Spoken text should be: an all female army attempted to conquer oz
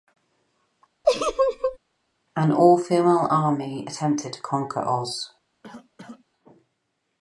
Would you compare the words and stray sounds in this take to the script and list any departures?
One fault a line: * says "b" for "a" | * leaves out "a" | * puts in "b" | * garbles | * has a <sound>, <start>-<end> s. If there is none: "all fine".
* has a laugh, 1.0-1.8 s
* has a cough, 5.6-6.2 s